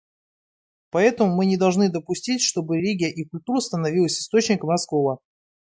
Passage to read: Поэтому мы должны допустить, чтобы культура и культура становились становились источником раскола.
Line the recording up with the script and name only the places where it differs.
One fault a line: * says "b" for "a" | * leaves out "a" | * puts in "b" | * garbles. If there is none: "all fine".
* puts in "не"
* says "религия" for "культура"
* leaves out "становились"